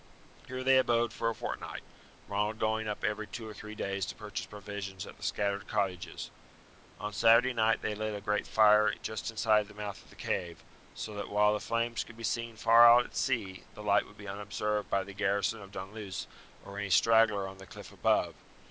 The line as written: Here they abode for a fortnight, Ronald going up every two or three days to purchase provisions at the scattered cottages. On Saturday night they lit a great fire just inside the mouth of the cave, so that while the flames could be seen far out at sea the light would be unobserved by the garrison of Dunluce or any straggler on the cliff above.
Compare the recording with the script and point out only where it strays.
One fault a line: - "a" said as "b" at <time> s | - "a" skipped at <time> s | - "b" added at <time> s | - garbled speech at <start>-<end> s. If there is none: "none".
none